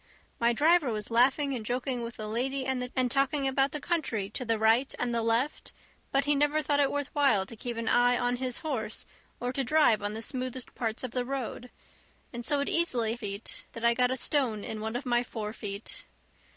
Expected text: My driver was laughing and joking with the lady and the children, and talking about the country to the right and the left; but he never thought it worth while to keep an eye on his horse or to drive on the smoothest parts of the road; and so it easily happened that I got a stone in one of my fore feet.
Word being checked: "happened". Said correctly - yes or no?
no